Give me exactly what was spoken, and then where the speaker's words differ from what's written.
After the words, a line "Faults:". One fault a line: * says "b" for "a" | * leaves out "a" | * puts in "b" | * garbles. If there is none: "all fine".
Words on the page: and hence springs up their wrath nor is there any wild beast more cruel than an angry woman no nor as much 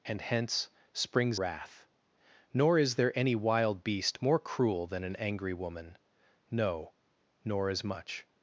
and hence springs wrath nor is there any wild beast more cruel than an angry woman no nor as much
Faults:
* leaves out "up their"